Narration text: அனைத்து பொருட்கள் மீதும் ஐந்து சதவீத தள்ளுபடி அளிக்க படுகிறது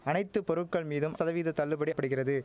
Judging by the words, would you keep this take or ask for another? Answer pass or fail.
fail